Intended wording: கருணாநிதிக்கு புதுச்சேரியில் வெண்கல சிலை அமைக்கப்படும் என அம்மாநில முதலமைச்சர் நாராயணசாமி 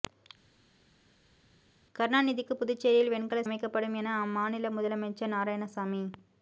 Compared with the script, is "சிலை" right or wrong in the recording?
wrong